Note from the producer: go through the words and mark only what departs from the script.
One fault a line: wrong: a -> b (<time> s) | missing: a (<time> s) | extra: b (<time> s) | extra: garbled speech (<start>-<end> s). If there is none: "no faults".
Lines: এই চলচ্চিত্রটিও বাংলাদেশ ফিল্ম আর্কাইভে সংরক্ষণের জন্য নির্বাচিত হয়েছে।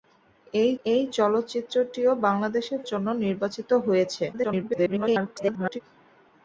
extra: এই (0.8 s)
missing: ফিল্ম আর্কাইভে সংরক্ষণের (2.7 s)
extra: garbled speech (4.3-5.8 s)